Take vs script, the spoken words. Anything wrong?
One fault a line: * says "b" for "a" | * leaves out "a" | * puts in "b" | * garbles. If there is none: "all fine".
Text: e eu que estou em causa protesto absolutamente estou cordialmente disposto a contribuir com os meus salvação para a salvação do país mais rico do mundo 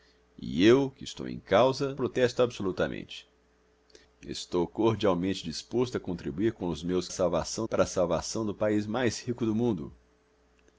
all fine